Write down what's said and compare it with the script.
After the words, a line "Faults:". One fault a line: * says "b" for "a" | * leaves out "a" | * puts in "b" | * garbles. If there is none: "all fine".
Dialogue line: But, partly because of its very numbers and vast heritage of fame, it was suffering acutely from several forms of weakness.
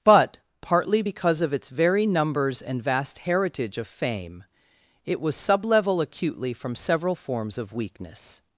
But, partly because of its very numbers and vast heritage of fame, it was sublevel acutely from several forms of weakness.
Faults:
* says "sublevel" for "suffering"